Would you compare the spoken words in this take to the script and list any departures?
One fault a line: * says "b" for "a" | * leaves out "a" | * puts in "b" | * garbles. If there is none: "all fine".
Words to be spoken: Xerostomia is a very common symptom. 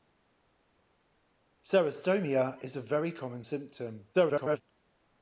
* garbles